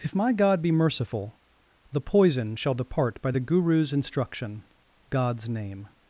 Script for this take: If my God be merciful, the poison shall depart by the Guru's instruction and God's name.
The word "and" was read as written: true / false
false